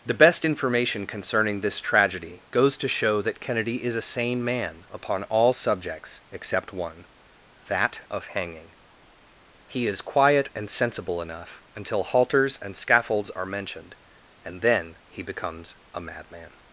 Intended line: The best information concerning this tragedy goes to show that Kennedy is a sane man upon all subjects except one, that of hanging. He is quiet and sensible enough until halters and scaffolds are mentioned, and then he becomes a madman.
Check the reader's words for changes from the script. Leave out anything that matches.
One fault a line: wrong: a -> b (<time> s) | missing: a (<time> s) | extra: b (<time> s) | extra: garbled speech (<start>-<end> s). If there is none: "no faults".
no faults